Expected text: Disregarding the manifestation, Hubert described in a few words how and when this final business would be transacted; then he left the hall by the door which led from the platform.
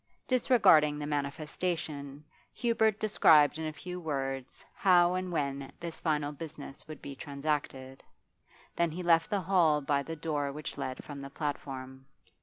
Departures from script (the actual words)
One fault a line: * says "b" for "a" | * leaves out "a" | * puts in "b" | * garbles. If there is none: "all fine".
all fine